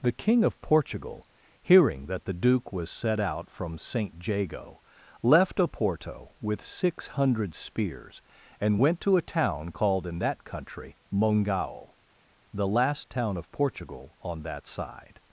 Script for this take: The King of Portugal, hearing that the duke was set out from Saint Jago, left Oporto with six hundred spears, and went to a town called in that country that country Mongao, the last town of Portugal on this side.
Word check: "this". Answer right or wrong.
wrong